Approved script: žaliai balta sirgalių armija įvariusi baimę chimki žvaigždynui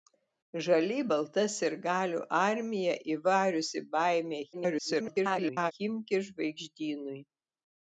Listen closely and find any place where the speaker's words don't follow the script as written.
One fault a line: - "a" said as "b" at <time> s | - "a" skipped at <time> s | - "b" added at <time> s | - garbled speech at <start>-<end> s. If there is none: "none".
- garbled speech at 4.5-5.7 s